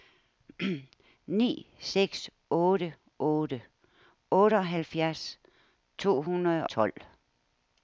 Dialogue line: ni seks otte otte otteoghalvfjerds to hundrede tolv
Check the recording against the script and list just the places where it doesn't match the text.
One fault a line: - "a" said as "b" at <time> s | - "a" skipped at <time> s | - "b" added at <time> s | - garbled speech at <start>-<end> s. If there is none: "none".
none